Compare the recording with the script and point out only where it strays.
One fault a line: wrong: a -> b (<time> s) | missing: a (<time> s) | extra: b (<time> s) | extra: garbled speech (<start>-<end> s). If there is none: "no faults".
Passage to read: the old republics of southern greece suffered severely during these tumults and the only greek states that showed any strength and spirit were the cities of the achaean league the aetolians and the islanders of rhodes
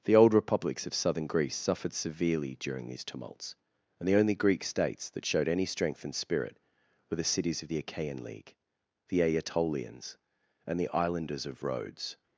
no faults